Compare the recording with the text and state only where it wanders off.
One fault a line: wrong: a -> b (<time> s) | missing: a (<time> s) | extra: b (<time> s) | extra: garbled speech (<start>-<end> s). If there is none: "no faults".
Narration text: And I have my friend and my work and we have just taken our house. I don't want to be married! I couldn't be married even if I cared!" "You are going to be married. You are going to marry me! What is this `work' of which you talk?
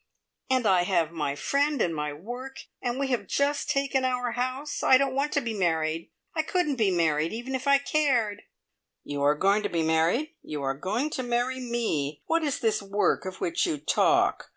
no faults